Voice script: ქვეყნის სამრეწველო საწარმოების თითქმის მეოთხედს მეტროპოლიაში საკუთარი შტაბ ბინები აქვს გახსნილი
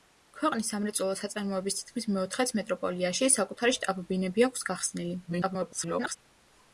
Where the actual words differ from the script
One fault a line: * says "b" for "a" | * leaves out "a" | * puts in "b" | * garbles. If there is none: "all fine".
* garbles